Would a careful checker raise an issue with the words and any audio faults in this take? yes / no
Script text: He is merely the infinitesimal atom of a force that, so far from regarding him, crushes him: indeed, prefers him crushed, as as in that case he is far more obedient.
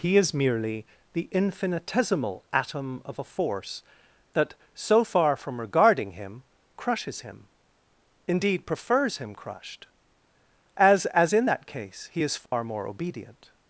yes